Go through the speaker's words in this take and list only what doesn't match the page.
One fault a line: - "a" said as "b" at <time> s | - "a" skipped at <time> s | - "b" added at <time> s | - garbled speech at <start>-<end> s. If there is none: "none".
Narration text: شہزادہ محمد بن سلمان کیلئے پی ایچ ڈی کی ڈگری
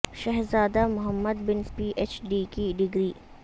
- "سلمان کیلئے" skipped at 1.6 s